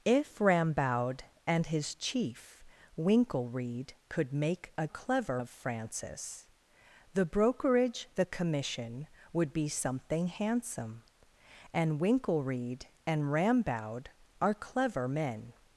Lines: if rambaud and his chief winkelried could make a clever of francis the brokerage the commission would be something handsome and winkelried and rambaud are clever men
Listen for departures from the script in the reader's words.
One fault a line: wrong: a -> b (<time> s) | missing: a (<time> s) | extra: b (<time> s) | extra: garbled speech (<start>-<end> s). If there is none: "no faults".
no faults